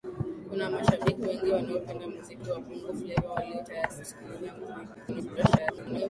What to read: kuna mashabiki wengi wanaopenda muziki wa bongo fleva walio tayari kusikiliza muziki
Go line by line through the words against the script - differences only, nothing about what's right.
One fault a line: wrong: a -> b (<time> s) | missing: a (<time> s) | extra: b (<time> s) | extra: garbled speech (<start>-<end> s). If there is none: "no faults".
extra: garbled speech (4.9-6.1 s)